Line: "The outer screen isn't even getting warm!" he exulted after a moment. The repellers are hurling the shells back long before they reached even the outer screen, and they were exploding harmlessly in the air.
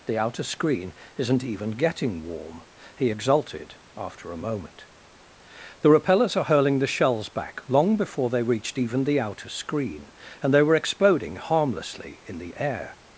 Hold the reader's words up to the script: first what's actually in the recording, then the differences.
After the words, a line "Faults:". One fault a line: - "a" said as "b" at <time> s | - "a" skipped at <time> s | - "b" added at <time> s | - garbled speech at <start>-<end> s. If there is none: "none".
"The outer screen isn't even getting warm!" he exulted after a moment. The repellers are hurling the shells back long before they reached even the outer screen, and they were exploding harmlessly in the air.
Faults:
none